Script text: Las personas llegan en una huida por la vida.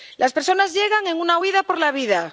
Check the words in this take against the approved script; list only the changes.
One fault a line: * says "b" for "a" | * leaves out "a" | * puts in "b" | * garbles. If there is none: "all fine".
all fine